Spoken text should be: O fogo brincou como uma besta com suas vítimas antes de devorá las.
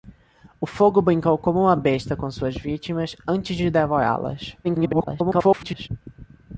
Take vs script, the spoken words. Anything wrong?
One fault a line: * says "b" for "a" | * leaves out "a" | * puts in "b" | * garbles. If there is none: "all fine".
* garbles